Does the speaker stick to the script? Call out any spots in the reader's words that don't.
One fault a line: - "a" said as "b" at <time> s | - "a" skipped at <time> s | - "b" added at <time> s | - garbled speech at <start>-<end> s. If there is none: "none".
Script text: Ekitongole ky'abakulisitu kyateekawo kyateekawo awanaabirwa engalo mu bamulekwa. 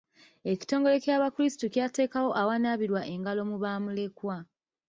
- "kyateekawo" skipped at 2.3 s